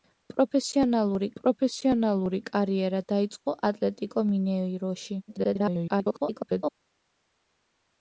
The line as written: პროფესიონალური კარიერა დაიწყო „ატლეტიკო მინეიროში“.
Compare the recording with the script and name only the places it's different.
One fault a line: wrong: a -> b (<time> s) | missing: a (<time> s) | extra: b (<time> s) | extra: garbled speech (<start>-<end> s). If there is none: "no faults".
extra: პროფესიონალური (1.4 s)
extra: garbled speech (5.3-6.8 s)